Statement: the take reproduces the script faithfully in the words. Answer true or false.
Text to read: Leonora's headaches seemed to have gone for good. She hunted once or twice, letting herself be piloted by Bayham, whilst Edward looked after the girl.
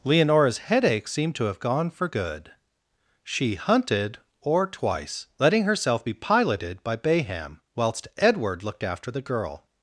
false